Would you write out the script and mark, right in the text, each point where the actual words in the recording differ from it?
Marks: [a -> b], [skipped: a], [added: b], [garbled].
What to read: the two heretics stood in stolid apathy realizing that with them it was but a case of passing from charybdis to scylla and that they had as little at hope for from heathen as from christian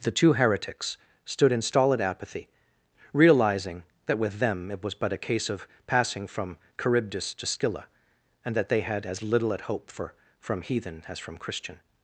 the two heretics stood in stolid apathy realizing that with them it was but a case of passing from charybdis to scylla and that they had as little at hope for from heathen as from christian